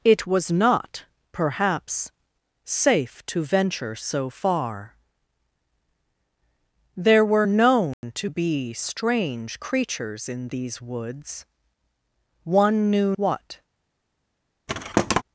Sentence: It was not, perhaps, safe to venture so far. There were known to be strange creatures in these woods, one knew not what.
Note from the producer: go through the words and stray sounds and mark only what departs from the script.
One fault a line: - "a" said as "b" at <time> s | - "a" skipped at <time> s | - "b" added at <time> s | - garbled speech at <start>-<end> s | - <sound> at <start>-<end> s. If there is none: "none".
- dropout at 7.9-8.0 s
- "not" skipped at 13.1 s
- thud at 14.7-15.2 s